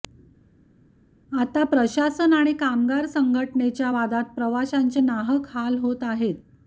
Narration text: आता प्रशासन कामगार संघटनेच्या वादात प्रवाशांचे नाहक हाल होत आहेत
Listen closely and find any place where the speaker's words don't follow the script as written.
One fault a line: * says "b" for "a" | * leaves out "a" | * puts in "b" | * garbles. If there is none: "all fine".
* puts in "आणि"